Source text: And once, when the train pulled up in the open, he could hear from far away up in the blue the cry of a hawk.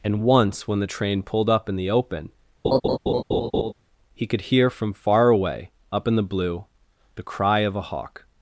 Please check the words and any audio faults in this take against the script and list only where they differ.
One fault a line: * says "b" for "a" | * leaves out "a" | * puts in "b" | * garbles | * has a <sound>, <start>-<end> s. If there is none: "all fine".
* has a laugh, 2.6-3.7 s